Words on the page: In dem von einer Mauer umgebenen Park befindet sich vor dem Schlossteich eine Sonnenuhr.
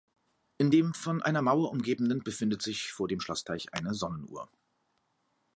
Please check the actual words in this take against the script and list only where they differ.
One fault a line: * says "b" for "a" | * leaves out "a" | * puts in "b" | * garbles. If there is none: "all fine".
* leaves out "Park"